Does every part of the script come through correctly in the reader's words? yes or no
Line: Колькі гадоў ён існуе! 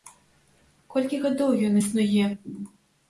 yes